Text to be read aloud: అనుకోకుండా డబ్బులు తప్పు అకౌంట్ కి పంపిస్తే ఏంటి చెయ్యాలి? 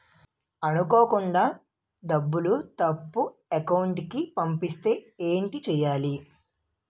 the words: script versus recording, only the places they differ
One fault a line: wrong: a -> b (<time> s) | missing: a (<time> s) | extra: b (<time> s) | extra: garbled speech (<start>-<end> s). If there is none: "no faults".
no faults